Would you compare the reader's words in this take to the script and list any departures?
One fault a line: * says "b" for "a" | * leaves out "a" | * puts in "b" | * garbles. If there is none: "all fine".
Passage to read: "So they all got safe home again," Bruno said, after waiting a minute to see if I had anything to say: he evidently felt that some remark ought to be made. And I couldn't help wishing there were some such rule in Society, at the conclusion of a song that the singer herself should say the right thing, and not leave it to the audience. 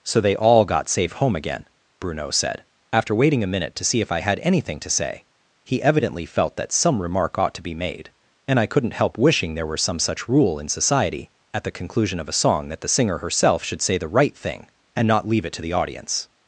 all fine